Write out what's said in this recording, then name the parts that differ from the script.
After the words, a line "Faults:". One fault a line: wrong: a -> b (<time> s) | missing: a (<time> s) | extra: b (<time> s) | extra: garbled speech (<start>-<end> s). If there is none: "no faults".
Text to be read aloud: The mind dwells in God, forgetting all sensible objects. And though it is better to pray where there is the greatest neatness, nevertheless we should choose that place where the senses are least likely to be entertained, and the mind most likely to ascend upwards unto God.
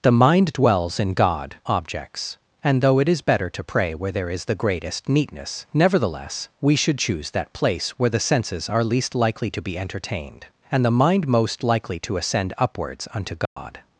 The mind dwells in God, objects. And though it is better to pray where there is the greatest neatness, nevertheless we should choose that place where the senses are least likely to be entertained, and the mind most likely to ascend upwards unto God.
Faults:
missing: forgetting all sensible (1.6 s)